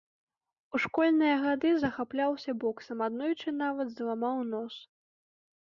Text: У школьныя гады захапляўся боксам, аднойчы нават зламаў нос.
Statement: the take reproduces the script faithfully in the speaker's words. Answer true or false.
true